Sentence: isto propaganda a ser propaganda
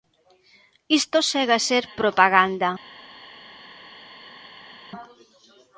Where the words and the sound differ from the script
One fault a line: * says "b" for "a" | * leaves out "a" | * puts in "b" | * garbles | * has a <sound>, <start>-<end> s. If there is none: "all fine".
* says "segue" for "propaganda"